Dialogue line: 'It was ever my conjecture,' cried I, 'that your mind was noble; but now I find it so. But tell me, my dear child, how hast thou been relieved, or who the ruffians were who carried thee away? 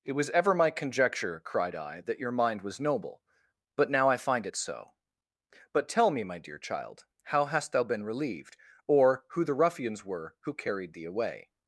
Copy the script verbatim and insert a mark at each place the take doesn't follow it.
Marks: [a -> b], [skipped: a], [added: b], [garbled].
'It was ever my conjecture,' cried I, 'that your mind was noble; but now I find it so. But tell me, my dear child, how hast thou been relieved, or who the ruffians were who carried thee away?